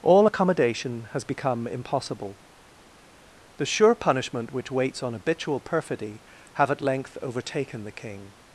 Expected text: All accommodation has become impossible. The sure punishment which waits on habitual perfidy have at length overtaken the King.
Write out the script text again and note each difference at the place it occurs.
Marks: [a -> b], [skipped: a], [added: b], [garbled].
All accommodation has become impossible. The sure punishment which waits on habitual perfidy have at length overtaken the King.